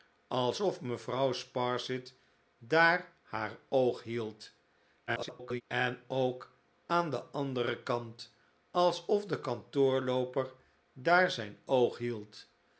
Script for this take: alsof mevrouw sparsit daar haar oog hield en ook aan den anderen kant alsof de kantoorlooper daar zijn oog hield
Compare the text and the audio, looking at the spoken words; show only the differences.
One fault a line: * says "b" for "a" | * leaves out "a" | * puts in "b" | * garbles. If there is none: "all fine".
* garbles